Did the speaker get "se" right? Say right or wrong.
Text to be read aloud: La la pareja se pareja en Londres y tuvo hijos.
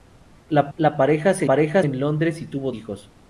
right